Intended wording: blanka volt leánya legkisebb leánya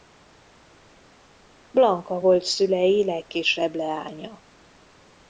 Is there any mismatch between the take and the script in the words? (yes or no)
yes